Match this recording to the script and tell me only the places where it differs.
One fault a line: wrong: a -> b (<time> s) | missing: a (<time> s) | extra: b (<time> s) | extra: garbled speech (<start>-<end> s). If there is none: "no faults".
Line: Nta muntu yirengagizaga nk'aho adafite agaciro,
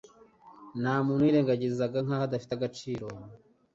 no faults